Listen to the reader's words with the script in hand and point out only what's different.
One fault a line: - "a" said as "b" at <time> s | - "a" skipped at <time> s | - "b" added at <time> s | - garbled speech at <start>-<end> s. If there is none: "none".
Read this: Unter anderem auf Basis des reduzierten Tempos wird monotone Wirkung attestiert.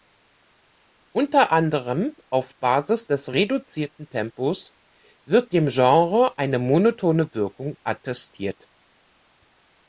- "dem Genre eine" added at 5.5 s